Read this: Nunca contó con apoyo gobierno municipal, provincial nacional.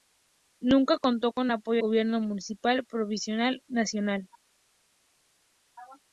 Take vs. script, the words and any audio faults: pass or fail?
pass